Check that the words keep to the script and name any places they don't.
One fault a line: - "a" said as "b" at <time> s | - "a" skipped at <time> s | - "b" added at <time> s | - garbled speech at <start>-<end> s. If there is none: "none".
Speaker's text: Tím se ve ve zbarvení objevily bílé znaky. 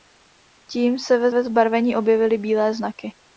none